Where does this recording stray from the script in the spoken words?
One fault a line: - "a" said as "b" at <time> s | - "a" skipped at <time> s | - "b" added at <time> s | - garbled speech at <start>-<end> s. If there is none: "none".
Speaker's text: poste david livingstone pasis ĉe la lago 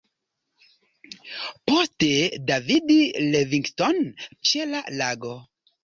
- "pasis" skipped at 4.3 s